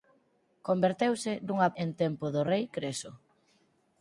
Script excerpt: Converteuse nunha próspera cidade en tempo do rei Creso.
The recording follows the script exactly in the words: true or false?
false